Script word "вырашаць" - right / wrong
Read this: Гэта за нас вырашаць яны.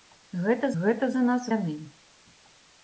wrong